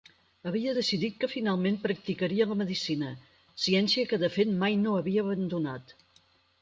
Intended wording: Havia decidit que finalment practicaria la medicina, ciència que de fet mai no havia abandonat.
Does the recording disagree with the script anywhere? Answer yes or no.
no